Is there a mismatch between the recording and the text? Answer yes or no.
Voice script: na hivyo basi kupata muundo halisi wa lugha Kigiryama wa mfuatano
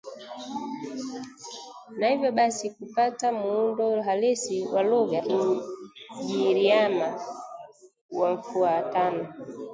no